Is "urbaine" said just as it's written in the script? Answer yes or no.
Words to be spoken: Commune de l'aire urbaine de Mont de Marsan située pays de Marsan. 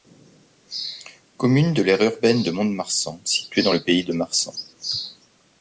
yes